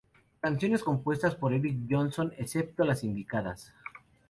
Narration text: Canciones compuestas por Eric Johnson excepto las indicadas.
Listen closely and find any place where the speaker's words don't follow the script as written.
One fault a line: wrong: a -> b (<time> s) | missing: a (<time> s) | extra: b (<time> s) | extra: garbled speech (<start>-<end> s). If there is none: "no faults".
no faults